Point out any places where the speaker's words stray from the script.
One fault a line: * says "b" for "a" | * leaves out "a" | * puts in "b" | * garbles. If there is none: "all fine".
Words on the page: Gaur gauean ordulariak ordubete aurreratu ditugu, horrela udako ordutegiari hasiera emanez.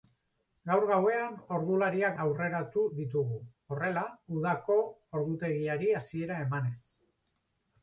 * leaves out "ordubete"